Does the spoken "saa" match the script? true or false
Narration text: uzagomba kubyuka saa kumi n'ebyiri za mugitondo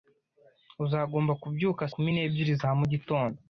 false